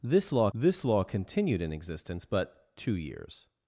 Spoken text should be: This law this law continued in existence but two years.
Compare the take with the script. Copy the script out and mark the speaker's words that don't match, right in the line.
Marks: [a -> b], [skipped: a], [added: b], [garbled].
This law this law continued in existence but two years.